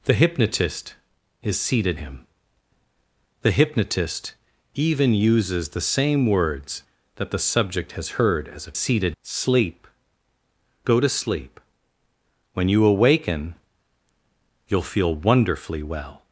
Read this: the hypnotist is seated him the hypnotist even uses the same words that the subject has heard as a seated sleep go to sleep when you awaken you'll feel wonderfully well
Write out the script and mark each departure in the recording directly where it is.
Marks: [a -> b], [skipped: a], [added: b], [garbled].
the hypnotist is seated him the hypnotist even uses the same words that the subject has heard as a seated sleep go to sleep when you awaken you'll feel wonderfully well